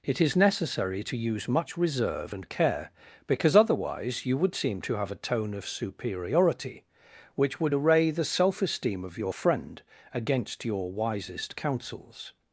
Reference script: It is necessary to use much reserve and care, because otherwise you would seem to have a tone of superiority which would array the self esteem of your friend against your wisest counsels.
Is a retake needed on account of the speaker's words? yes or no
no